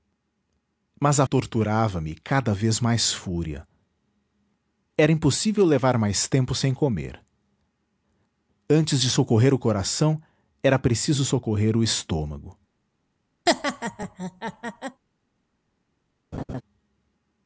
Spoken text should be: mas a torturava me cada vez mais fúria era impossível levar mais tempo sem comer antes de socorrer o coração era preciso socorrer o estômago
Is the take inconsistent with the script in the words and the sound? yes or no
yes